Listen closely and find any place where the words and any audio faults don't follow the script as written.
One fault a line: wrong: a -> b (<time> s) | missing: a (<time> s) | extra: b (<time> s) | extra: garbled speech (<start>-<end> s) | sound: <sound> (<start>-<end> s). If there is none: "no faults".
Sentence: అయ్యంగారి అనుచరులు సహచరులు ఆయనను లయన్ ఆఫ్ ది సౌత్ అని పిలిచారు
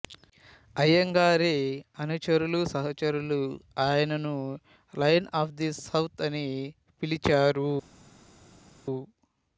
no faults